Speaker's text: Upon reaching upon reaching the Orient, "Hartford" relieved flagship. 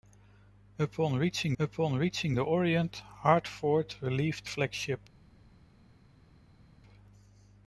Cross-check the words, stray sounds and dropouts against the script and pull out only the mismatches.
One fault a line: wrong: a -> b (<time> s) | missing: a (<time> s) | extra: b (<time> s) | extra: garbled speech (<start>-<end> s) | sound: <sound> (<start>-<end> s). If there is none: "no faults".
no faults